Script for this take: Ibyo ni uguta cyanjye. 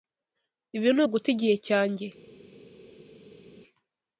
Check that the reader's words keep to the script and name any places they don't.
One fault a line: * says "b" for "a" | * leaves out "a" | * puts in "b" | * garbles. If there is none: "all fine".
* says "Ibi" for "Ibyo"
* puts in "igihe"